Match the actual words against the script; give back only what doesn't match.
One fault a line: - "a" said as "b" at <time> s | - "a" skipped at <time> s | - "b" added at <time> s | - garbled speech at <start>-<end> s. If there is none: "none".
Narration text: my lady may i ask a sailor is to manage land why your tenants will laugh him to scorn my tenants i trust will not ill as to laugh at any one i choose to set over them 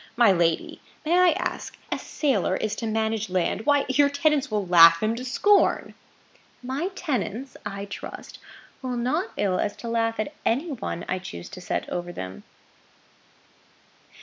none